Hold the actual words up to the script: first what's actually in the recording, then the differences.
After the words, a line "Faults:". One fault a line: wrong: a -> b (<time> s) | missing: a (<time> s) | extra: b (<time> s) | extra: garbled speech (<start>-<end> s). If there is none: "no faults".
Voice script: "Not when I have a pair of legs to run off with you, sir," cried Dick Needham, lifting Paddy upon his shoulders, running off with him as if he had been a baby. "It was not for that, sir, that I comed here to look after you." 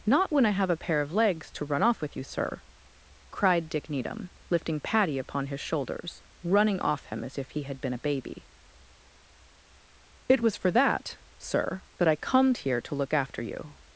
"Not when I have a pair of legs to run off with you, sir," cried Dick Needham, lifting Paddy upon his shoulders, running off him as if he had been a baby. "It was for that, sir, that I comed here to look after you."
Faults:
missing: with (7.0 s)
missing: not (10.6 s)